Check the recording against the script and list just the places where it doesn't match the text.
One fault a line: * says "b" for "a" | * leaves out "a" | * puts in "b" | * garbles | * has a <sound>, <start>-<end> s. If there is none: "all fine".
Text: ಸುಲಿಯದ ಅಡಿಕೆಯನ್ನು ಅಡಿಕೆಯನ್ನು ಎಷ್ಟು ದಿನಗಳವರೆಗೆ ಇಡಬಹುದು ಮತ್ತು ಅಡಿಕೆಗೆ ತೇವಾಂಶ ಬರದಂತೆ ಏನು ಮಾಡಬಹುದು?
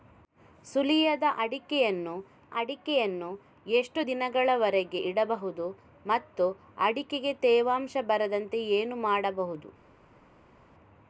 all fine